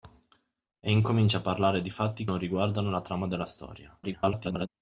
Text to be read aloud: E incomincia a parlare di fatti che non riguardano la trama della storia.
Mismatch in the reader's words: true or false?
true